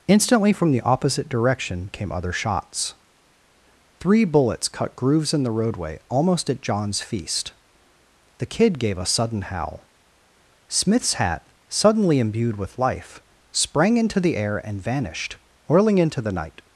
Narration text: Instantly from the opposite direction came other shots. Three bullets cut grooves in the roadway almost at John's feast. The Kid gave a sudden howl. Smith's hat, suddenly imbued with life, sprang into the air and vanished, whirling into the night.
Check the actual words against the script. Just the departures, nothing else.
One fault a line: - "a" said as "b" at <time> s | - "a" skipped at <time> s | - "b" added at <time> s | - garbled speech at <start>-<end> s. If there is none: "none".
none